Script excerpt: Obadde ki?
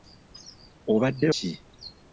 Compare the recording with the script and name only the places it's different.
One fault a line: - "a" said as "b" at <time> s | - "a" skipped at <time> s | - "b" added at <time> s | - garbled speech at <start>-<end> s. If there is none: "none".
none